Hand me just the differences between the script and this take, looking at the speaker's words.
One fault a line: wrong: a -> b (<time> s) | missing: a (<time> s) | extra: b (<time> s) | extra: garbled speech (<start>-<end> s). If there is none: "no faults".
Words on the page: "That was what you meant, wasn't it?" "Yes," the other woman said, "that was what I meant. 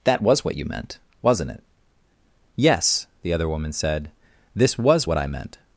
wrong: that -> this (4.5 s)